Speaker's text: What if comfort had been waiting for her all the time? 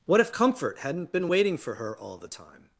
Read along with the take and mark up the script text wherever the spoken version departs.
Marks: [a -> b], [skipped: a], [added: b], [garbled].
What if comfort [had -> hadn't] been waiting for her all the time?